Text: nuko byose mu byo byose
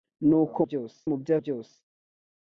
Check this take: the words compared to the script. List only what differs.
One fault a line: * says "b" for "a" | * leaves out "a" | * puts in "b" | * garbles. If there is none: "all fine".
all fine